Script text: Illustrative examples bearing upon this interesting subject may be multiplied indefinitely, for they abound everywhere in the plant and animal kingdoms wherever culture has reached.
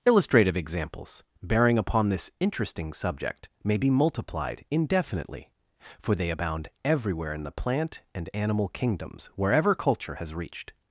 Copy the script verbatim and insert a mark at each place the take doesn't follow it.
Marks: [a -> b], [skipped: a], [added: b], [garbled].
Illustrative examples bearing upon this interesting subject may be multiplied indefinitely, for they abound everywhere in the plant and animal kingdoms wherever culture has reached.